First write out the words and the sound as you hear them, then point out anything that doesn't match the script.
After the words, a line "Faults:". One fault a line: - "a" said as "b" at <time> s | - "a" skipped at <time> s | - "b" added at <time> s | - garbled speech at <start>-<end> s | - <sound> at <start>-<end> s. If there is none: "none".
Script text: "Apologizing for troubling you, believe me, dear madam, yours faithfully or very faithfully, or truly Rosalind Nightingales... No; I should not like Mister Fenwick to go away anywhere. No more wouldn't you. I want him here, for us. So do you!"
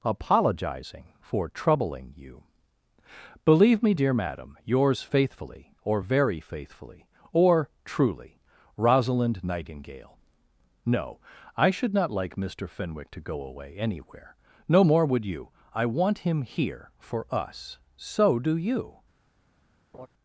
"Apologizing for troubling you, believe me, dear madam, yours faithfully or very faithfully, or truly Rosalind Nightingale... No; I should not like Mister Fenwick to go away anywhere. No more would you. I want him here, for us. So do you!"
Faults:
- "Nightingales" said as "Nightingale" at 9.4 s
- "wouldn't" said as "would" at 15.0 s
- laugh at 19.9-20.1 s